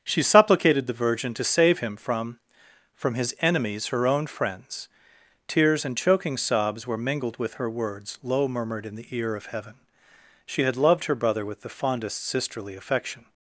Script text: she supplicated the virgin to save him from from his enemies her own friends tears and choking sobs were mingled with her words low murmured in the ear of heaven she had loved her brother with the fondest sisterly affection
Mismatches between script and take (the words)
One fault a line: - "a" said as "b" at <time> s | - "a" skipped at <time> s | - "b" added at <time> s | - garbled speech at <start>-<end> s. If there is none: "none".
none